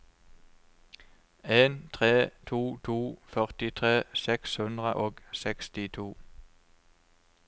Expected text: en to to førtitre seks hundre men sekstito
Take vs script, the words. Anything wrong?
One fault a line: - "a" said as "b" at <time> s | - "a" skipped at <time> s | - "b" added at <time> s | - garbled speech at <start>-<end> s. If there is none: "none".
- "tre" added at 1.9 s
- "men" said as "og" at 4.9 s